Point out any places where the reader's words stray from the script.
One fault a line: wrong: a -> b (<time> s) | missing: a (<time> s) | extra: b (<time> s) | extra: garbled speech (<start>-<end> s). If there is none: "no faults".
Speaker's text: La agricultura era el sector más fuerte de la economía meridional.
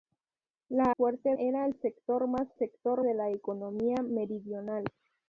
wrong: agricultura -> fuerte (0.9 s)
wrong: fuerte -> sector (2.6 s)